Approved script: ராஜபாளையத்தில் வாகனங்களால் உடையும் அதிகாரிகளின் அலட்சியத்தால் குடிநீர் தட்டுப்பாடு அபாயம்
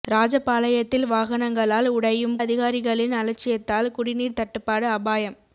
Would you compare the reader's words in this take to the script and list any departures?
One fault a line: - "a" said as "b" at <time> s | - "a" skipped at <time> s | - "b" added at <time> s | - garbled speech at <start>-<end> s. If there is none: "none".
none